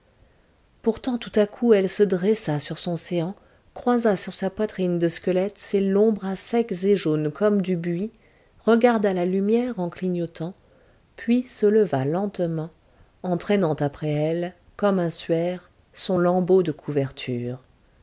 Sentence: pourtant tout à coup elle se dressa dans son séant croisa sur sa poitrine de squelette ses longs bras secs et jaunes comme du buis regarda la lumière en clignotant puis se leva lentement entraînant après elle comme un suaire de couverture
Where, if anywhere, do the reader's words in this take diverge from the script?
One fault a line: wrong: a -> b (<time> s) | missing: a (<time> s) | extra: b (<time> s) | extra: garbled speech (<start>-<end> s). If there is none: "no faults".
wrong: dans -> sur (2.6 s)
extra: son lambeau (15.9 s)